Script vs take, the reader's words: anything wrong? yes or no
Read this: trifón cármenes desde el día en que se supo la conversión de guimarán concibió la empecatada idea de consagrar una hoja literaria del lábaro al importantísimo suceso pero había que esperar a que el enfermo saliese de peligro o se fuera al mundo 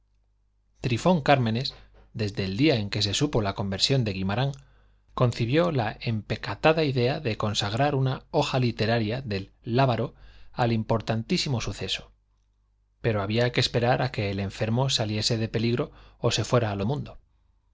no